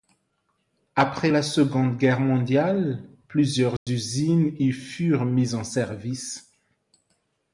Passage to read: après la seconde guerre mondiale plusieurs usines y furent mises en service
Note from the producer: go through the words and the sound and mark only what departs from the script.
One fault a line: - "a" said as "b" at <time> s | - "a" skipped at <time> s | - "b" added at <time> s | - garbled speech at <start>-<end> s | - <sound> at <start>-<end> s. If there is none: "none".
- dropout at 3.8-3.9 s